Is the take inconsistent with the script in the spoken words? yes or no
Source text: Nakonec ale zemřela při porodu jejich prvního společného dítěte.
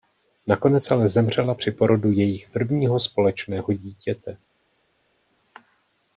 no